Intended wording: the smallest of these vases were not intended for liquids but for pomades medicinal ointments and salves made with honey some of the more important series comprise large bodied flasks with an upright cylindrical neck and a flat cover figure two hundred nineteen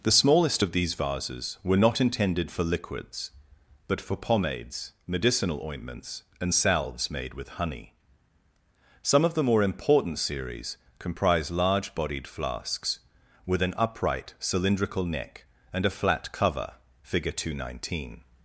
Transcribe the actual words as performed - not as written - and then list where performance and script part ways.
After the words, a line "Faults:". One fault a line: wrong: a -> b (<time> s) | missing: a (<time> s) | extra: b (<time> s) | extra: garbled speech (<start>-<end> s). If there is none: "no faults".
the smallest of these vases were not intended for liquids but for pomades medicinal ointments and salves made with honey some of the more important series comprise large bodied flasks with an upright cylindrical neck and a flat cover figure two hundred nineteen
Faults:
no faults